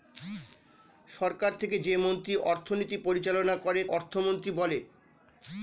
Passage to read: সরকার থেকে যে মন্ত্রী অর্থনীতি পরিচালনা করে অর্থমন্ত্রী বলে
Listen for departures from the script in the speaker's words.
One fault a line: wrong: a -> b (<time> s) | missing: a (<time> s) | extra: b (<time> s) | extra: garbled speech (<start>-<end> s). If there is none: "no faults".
no faults